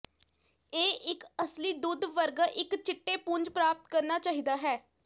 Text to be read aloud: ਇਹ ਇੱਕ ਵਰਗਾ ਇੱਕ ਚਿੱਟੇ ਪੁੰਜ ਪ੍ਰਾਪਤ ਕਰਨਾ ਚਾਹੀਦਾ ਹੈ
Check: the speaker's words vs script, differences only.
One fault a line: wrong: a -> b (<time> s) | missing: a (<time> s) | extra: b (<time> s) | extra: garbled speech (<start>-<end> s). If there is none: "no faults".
extra: ਅਸਲੀ ਦੁੱਧ (1.4 s)